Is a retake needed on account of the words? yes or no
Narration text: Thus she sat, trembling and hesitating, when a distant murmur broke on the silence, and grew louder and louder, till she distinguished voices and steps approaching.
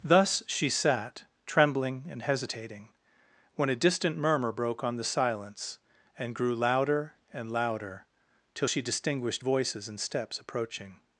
no